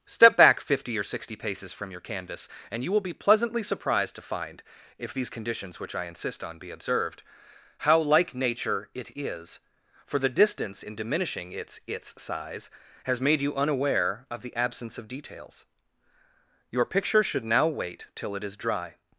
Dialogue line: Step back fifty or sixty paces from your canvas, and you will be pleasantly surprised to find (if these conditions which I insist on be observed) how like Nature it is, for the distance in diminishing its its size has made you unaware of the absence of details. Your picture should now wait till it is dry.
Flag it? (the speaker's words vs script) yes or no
no